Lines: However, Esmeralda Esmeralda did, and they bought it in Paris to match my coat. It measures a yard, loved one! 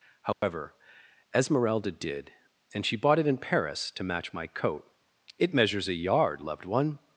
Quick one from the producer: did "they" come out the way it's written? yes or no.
no